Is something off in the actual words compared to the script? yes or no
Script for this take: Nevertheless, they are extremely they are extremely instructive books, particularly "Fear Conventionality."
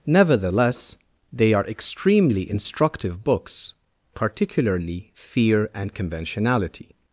yes